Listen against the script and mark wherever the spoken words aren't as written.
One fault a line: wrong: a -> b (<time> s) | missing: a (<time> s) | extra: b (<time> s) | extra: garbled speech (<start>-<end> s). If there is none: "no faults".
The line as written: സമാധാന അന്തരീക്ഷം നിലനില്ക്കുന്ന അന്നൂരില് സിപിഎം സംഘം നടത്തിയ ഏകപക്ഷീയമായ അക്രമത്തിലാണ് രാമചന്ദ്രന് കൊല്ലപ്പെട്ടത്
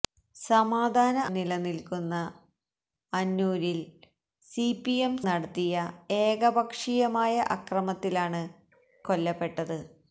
missing: അന്തരീക്ഷം (1.2 s)
missing: സംഘം (5.1 s)
missing: രാമചന്ദ്രന് (8.4 s)